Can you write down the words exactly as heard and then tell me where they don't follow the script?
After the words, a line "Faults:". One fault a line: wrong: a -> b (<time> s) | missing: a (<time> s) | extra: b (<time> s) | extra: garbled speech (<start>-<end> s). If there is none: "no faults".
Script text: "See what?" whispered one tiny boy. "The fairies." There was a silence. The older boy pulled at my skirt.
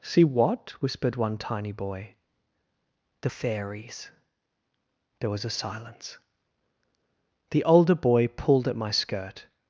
"See what?" whispered one tiny boy. "The fairies." There was a silence. The older boy pulled at my skirt.
Faults:
no faults